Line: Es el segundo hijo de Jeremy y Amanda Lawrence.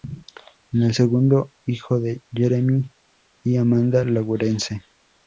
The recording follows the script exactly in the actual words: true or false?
true